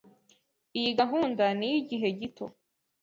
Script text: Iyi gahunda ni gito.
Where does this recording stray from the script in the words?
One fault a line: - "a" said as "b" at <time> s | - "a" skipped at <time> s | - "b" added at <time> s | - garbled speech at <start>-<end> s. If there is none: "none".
- "iyigihe" added at 1.7 s